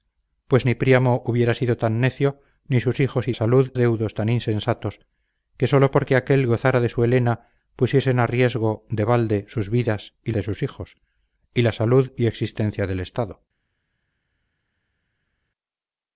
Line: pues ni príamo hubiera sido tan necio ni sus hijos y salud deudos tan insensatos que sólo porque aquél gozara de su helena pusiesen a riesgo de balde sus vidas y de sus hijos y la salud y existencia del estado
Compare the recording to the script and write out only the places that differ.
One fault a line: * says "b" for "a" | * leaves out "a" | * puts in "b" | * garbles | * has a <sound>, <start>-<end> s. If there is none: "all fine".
all fine